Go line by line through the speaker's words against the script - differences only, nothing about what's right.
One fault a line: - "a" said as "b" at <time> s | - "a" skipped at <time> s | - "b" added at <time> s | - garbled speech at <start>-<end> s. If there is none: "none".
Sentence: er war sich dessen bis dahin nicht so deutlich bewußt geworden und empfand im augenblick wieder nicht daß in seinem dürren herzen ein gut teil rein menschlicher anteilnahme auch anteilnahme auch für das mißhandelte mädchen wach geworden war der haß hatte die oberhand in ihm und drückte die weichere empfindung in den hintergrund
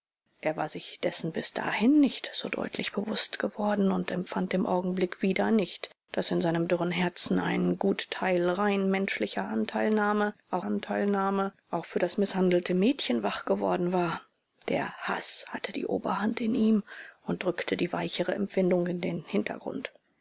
none